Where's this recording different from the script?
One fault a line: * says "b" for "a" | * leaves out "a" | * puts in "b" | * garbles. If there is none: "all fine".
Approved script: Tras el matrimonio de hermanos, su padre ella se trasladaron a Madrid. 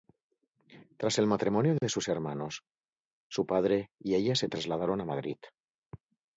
* puts in "sus"
* puts in "y"